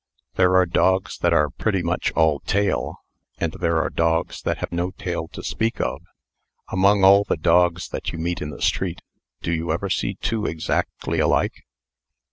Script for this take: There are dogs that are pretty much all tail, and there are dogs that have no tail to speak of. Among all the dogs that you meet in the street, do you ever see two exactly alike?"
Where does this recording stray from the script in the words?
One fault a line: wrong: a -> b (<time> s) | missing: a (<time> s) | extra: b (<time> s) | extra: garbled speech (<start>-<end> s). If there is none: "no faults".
no faults